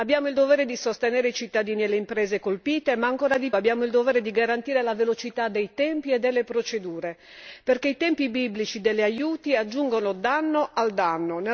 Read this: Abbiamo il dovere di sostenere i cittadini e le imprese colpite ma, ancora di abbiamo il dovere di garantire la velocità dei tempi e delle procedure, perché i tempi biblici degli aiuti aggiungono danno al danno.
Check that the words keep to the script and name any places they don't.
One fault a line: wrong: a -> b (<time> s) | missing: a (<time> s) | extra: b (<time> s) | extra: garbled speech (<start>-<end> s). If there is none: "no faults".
no faults